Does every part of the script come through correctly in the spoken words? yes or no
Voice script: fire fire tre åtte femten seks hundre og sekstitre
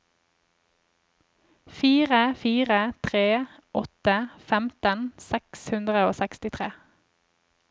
yes